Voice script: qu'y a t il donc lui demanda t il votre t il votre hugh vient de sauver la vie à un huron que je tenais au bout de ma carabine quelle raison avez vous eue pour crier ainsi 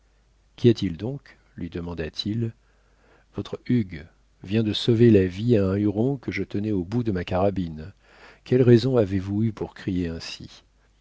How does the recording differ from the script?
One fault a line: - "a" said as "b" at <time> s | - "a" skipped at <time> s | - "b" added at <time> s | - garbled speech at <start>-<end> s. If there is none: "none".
- "t il votre" skipped at 3.6 s